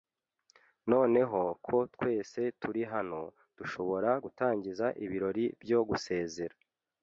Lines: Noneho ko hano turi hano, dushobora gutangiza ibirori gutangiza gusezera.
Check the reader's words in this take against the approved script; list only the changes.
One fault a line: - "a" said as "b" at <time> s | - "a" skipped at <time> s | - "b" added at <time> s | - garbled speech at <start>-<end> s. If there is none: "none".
- "hano" said as "twese" at 1.9 s
- "gutangiza" said as "byo" at 5.6 s